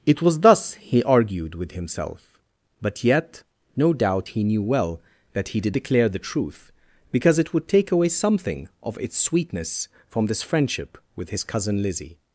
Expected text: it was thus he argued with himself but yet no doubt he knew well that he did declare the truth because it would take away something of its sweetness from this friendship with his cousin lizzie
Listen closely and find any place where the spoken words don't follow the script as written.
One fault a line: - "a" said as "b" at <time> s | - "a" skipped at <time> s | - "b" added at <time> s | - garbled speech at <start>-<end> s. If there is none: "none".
none